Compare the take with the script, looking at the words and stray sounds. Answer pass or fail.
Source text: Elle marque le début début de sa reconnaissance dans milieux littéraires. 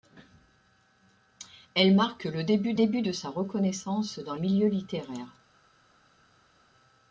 pass